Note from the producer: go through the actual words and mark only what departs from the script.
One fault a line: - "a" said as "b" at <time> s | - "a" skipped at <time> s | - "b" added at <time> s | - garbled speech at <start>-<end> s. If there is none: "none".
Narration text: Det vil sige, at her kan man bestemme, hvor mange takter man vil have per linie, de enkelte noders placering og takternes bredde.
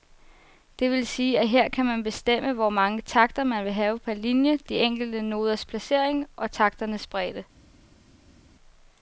none